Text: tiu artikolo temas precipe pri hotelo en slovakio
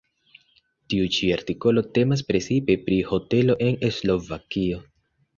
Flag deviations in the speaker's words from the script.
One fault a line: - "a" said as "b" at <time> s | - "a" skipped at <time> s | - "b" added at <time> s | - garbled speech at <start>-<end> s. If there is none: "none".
- "ĉi" added at 1.2 s